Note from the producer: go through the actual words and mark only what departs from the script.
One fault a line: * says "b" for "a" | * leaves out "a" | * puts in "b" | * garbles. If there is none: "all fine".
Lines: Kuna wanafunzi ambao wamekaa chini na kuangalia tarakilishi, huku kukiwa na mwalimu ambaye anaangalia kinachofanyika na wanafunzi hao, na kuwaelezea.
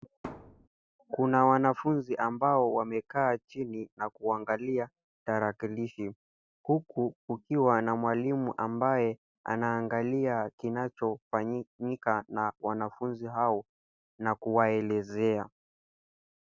all fine